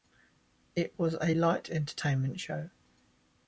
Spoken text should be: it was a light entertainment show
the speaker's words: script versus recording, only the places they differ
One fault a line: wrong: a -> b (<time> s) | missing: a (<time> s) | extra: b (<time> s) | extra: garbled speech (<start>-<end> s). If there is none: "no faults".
no faults